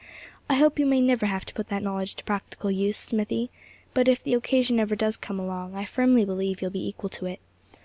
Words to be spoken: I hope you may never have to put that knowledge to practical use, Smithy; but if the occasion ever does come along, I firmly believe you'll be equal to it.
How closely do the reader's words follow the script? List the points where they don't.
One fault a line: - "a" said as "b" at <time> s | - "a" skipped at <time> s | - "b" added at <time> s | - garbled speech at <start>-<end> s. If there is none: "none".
none